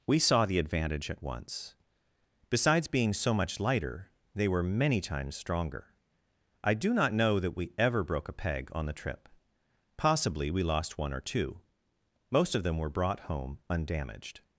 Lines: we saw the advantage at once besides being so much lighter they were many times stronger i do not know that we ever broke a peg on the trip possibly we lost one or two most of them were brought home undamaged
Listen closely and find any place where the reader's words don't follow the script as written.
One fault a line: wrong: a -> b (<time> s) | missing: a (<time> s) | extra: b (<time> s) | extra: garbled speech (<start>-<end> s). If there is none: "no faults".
no faults